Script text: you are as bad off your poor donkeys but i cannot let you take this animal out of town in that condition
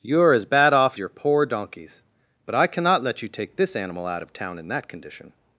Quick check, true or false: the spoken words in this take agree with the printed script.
true